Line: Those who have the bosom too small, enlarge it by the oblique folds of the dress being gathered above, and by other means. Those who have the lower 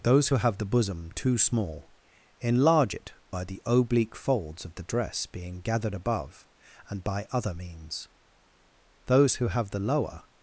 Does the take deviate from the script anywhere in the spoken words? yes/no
no